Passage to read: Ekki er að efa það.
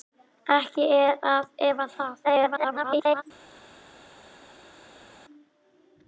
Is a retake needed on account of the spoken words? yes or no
yes